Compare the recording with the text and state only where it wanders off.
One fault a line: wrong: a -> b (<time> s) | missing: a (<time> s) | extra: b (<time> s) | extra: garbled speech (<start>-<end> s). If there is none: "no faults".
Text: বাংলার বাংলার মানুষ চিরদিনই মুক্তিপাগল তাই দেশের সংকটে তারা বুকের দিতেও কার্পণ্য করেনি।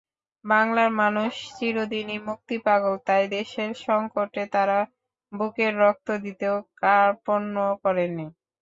missing: বাংলার (0.9 s)
extra: রক্ত (5.8 s)